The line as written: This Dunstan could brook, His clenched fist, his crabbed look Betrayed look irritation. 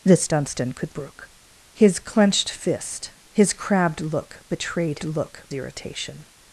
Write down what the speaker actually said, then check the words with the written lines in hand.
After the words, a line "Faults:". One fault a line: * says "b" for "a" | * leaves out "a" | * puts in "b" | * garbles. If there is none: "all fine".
This Dunstan could brook, His clenched fist, his crabbed look Betrayed look irritation.
Faults:
all fine